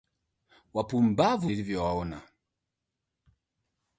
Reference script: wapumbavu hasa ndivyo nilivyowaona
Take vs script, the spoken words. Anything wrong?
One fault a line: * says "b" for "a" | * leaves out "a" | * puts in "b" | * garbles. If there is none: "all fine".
* leaves out "hasa ndivyo"